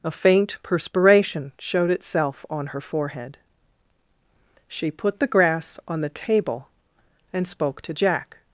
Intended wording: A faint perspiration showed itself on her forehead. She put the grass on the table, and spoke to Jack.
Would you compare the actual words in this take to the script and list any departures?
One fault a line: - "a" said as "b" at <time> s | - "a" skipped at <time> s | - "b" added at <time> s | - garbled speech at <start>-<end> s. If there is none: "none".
none